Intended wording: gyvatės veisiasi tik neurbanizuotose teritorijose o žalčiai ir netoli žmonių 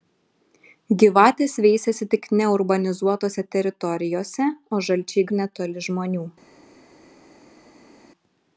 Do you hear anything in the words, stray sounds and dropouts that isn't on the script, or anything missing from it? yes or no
no